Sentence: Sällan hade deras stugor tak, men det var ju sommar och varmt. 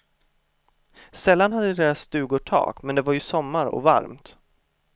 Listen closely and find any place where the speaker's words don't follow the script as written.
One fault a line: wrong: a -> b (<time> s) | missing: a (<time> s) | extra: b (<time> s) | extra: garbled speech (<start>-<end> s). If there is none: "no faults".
no faults